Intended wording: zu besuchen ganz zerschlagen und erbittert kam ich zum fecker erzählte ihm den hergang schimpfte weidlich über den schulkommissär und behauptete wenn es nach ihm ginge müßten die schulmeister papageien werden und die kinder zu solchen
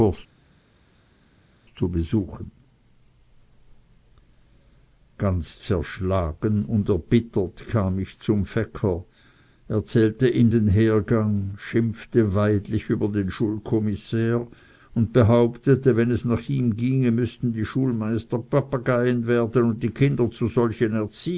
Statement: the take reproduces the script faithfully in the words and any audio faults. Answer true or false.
true